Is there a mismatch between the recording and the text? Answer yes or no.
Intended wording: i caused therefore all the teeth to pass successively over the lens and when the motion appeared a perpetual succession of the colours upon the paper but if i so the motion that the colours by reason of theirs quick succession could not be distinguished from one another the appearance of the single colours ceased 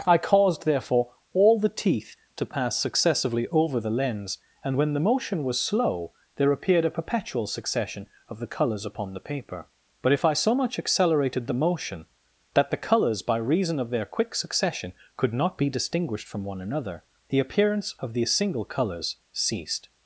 yes